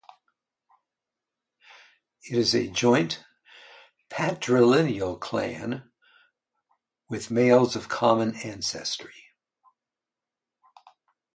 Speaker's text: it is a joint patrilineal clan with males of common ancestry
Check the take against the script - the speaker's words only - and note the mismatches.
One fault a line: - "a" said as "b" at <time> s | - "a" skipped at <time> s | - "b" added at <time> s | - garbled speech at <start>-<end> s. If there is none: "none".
none